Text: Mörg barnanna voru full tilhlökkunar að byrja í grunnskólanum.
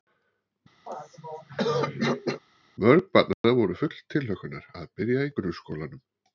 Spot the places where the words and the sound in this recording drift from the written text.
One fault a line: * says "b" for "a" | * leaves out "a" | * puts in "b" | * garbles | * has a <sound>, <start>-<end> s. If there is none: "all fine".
* has a throat clearing, 0.9-2.4 s
* has a dropout, 3.3-3.4 s